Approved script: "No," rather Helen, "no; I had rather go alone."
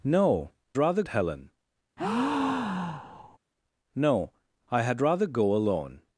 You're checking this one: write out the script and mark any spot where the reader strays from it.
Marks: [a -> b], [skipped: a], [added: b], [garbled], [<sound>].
"No," rather Helen, [breath] "no; I had rather go alone."